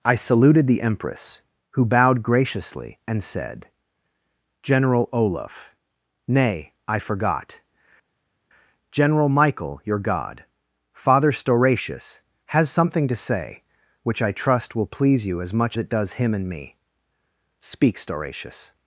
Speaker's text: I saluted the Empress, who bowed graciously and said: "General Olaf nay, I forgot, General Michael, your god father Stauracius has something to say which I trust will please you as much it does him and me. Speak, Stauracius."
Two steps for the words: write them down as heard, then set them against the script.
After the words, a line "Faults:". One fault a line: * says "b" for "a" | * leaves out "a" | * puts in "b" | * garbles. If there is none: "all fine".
I saluted the Empress, who bowed graciously and said: "General Olaf nay, I forgot, General Michael, your god father Stauracius has something to say which I trust will please you as much it does him and me. Speak, Stauracius."
Faults:
all fine